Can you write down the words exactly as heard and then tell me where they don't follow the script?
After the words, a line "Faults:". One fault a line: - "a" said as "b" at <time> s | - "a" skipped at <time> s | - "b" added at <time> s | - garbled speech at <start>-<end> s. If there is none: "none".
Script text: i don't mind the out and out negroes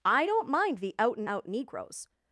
i don't mind the out and out negroes
Faults:
none